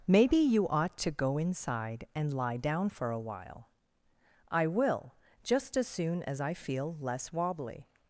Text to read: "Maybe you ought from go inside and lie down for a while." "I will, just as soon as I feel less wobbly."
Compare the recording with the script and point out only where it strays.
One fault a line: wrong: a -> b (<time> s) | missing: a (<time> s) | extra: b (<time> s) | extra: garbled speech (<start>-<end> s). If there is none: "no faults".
wrong: from -> to (1.0 s)